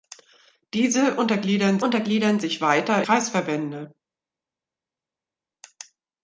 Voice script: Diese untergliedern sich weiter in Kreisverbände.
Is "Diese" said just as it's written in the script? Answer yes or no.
yes